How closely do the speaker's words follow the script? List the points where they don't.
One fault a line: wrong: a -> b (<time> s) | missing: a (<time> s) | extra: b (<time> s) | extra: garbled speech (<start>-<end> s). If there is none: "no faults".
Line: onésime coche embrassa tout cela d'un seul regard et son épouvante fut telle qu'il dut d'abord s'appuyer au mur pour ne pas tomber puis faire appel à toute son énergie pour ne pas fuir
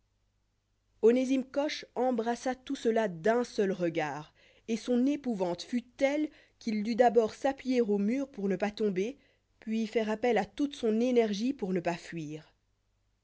no faults